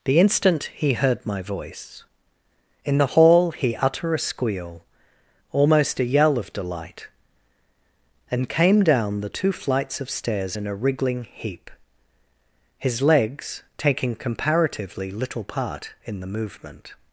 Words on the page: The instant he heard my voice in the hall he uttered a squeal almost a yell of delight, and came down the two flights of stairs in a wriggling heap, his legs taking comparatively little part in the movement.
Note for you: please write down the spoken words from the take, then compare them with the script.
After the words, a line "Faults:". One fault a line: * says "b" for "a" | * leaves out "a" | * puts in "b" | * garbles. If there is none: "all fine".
The instant he heard my voice in the hall he utter a squeal almost a yell of delight, and came down the two flights of stairs in a wriggling heap, his legs taking comparatively little part in the movement.
Faults:
* says "utter" for "uttered"